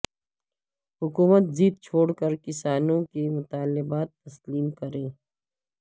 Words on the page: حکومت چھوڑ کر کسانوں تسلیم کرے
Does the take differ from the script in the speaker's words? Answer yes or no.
yes